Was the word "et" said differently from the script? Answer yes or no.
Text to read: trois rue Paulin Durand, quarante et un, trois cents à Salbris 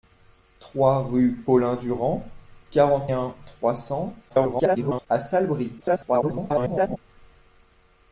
yes